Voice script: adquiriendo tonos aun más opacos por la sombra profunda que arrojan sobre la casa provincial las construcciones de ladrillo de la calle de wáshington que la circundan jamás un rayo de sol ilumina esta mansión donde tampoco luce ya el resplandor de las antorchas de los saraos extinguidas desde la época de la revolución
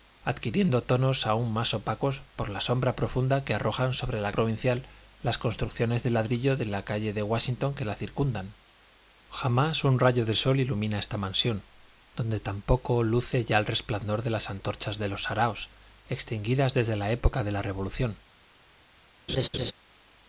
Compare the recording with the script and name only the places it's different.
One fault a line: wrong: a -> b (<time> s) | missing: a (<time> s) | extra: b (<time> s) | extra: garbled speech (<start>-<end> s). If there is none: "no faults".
missing: casa (4.3 s)